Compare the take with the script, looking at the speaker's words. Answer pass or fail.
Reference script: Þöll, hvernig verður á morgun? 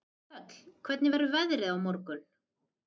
fail